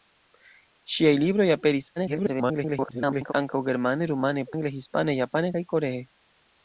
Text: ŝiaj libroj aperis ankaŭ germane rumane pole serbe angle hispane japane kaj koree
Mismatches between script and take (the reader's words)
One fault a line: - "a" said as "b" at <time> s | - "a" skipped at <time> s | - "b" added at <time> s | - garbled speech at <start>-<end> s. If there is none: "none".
- garbled speech at 2.0-3.3 s
- "pole serbe" skipped at 4.5 s